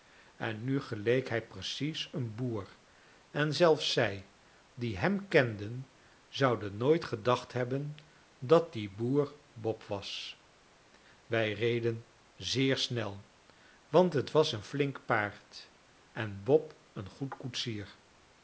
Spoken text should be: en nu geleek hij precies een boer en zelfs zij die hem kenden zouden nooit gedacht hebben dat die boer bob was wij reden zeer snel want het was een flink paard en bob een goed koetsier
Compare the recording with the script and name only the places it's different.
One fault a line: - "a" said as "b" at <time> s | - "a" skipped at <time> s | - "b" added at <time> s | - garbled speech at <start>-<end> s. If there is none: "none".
none